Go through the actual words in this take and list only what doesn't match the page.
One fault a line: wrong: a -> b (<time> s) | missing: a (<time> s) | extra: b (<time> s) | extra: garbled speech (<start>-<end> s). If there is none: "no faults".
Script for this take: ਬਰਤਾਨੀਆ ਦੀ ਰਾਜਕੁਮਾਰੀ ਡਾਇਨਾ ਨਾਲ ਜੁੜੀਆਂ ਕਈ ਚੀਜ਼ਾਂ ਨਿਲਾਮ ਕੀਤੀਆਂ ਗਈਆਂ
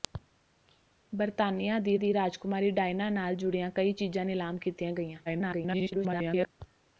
extra: ਦੀ (1.9 s)
extra: garbled speech (5.3-6.5 s)